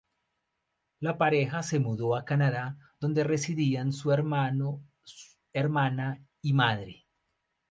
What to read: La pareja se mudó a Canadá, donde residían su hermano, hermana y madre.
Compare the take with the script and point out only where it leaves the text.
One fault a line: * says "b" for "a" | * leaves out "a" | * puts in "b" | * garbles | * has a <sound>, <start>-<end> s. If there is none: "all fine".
all fine